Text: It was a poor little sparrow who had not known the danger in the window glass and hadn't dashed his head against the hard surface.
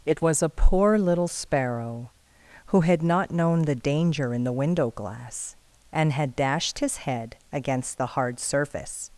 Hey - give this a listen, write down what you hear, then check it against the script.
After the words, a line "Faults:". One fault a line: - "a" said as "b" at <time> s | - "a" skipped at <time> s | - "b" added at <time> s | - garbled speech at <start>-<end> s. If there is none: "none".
It was a poor little sparrow who had not known the danger in the window glass and had dashed his head against the hard surface.
Faults:
- "hadn't" said as "had" at 6.1 s